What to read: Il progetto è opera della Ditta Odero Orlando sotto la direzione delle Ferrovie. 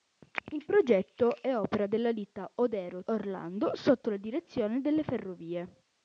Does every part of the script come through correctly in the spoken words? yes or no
yes